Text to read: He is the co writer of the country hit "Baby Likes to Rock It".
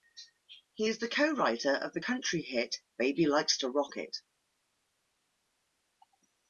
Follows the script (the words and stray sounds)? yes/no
yes